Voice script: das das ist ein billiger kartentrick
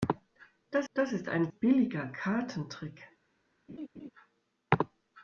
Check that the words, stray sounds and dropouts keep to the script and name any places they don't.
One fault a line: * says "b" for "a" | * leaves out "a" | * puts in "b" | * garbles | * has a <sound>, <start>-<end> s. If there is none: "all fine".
* has a laugh, 3.7-4.1 s